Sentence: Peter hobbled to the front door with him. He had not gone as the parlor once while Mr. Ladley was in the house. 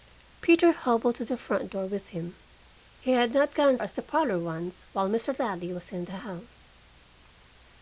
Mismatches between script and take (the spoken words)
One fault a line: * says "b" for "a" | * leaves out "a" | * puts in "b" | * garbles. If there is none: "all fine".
all fine